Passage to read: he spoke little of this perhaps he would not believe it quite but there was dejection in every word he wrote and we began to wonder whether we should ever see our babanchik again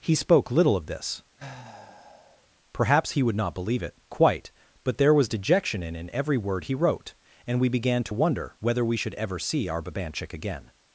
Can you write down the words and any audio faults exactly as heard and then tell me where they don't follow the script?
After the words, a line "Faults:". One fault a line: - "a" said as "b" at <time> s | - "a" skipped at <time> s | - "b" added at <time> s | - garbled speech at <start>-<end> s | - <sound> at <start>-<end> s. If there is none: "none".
he spoke little of this perhaps he would not believe it quite but there was dejection in in every word he wrote and we began to wonder whether we should ever see our babanchik again
Faults:
- sigh at 1.4-2.5 s
- "in" added at 5.9 s